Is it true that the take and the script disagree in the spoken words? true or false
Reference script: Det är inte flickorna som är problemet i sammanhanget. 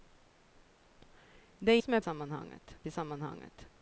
true